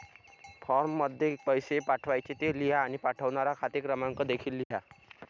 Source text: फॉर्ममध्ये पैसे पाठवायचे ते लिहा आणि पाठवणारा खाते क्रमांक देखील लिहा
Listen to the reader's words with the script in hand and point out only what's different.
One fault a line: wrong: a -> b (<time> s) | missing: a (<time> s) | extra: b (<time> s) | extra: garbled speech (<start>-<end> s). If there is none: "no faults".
no faults